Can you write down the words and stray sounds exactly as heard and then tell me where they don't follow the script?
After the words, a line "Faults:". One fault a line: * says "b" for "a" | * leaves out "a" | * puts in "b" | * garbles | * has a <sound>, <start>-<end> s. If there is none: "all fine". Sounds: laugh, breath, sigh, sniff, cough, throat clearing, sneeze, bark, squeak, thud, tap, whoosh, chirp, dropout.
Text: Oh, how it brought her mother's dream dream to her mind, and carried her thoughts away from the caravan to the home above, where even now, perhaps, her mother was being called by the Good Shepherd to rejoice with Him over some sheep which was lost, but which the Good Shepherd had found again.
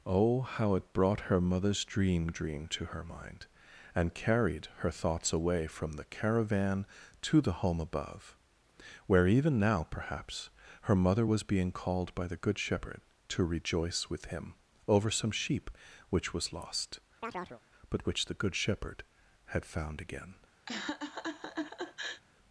Oh, how it brought her mother's dream dream to her mind, and carried her thoughts away from the caravan to the home above, where even now, perhaps, her mother was being called by the Good Shepherd to rejoice with Him over some sheep which was lost, but which the Good Shepherd had found again.
Faults:
* has a chirp, 17.2-17.6 s
* has a laugh, 20.7-22.2 s